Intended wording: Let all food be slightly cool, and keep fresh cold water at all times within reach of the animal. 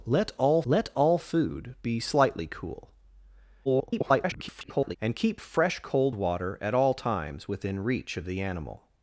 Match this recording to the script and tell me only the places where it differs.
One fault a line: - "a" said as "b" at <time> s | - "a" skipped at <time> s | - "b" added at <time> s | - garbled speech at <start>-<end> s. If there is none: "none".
- "let all" added at 0.6 s
- garbled speech at 3.6-5.0 s